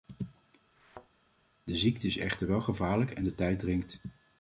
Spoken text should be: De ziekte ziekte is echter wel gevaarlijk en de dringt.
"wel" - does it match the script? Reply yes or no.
yes